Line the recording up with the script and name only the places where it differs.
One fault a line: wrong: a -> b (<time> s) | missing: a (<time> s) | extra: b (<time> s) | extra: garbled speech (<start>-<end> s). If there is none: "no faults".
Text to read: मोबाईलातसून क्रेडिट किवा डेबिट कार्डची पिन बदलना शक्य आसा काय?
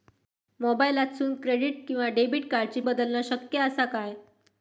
missing: पिन (2.8 s)